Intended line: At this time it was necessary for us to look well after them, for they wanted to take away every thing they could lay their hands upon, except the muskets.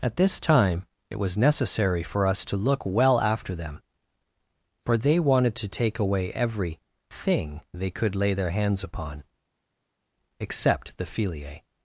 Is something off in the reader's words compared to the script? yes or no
yes